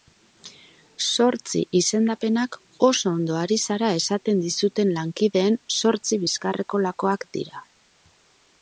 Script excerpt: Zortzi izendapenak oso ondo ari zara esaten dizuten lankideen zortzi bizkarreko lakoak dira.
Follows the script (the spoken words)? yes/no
yes